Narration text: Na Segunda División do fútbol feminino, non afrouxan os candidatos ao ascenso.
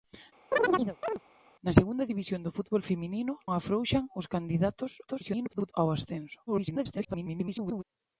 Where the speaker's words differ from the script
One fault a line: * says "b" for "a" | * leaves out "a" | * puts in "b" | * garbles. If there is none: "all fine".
* leaves out "non"
* garbles
* garbles